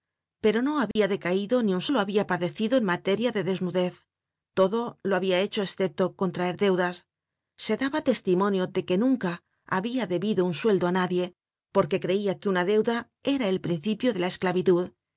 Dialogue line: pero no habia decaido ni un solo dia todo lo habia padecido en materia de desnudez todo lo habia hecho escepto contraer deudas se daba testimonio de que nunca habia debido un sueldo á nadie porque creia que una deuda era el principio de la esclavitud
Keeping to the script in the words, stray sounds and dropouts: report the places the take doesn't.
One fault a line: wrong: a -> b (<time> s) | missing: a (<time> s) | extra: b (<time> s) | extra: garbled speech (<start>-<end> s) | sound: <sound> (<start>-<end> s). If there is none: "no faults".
sound: dropout (0.9-1.0 s)
missing: solo dia todo (1.8 s)